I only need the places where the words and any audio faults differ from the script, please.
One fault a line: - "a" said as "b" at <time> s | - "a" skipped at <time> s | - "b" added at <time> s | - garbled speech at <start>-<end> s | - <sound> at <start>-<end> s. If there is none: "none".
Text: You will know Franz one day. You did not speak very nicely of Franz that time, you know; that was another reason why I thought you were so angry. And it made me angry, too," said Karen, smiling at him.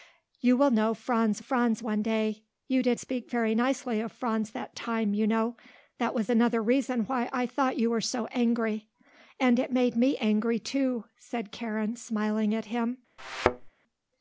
- "Franz" added at 1.4 s
- "not" skipped at 3.0 s
- thud at 13.2-13.7 s